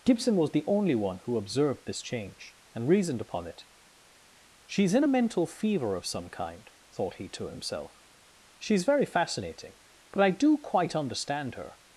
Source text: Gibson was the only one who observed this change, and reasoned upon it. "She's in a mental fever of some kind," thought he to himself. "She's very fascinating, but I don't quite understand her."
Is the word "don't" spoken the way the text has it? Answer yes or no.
no